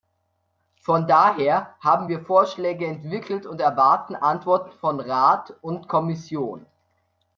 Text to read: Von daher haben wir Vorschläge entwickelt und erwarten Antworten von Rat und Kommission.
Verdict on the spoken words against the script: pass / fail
pass